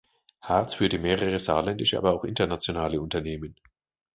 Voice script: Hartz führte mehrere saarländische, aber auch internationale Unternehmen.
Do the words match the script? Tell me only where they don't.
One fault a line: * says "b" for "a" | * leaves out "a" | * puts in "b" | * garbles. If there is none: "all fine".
all fine